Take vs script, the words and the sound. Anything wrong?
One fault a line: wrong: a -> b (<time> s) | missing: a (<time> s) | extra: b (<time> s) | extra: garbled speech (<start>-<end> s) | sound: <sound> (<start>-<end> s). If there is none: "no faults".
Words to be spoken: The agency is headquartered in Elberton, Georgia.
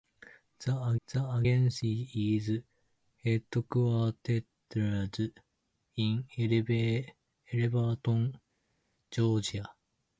extra: the (1.0 s)